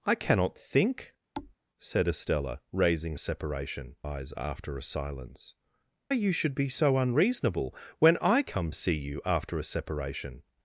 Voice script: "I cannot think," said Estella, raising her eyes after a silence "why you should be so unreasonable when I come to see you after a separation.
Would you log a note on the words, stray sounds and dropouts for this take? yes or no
yes